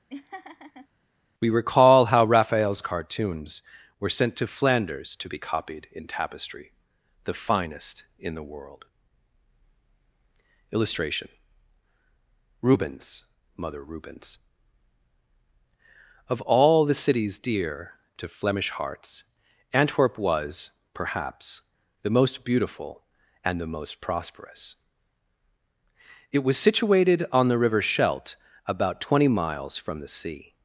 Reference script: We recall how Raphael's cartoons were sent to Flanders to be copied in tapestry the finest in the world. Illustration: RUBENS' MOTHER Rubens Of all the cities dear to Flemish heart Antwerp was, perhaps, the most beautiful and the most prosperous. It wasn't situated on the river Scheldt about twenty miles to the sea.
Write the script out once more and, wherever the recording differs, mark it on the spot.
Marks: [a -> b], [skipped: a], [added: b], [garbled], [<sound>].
[laugh] We recall how Raphael's cartoons were sent to Flanders to be copied in tapestry the finest in the world. Illustration: RUBENS' MOTHER Rubens Of all the cities dear to Flemish [heart -> hearts] Antwerp was, perhaps, the most beautiful and the most prosperous. It [wasn't -> was] situated on the river Scheldt about twenty miles [to -> from] the sea.